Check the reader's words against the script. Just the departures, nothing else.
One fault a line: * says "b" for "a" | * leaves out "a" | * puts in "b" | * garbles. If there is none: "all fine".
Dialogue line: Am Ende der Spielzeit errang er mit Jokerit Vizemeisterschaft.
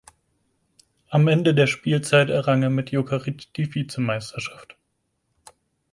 * puts in "die"